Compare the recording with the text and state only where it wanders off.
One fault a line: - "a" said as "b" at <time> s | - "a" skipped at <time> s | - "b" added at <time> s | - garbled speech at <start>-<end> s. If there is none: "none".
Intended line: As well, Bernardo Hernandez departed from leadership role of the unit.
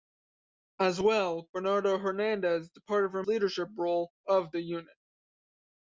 none